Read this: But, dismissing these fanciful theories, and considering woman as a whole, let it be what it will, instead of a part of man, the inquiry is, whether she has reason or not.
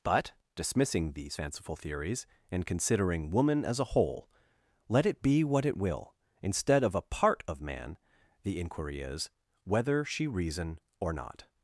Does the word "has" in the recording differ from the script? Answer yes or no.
yes